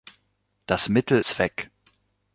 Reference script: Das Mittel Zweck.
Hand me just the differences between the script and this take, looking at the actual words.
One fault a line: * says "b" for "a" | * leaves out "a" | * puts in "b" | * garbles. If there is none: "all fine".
all fine